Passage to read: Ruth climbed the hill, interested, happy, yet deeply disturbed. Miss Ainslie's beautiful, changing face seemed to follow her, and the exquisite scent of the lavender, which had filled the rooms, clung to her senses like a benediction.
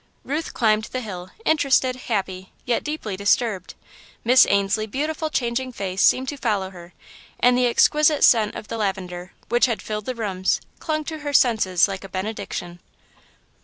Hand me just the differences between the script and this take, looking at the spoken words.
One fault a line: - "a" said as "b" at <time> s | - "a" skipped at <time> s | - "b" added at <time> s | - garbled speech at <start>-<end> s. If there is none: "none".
none